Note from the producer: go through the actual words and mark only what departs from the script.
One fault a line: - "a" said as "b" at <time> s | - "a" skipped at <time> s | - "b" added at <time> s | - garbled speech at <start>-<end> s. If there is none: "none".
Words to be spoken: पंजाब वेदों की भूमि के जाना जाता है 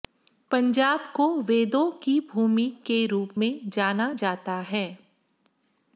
- "को" added at 1.1 s
- "रूप में" added at 3.1 s